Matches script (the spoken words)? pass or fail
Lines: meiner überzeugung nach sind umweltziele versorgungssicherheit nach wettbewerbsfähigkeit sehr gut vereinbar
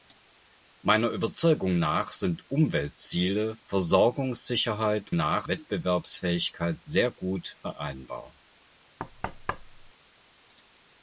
pass